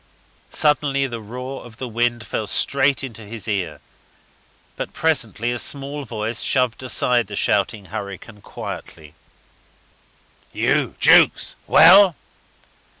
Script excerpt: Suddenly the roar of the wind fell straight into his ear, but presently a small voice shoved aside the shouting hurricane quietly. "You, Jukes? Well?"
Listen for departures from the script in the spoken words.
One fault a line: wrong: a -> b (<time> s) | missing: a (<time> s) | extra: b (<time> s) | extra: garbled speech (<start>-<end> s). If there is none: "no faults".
no faults